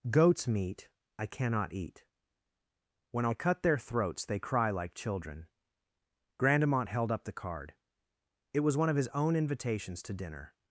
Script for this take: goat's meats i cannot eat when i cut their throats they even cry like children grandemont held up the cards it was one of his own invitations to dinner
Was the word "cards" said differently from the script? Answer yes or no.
yes